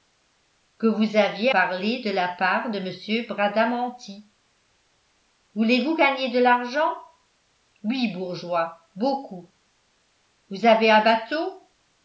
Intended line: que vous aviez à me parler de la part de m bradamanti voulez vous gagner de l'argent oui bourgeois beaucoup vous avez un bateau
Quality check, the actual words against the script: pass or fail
fail